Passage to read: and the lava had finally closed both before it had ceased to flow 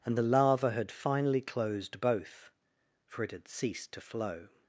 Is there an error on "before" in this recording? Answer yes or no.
yes